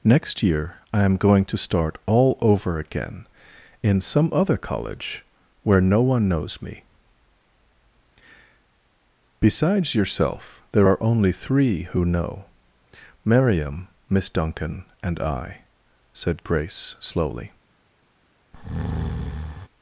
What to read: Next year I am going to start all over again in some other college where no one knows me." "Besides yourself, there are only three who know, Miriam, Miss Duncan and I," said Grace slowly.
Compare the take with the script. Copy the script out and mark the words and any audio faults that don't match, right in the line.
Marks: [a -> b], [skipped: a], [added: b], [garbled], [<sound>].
Next year I am going to start all over again in some other college where no one knows me." "Besides yourself, there are only three who know, Miriam, Miss Duncan and I," said Grace slowly. [breath]